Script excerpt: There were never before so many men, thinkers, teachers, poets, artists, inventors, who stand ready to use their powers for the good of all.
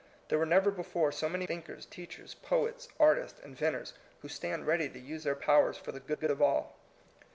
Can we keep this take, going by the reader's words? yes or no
no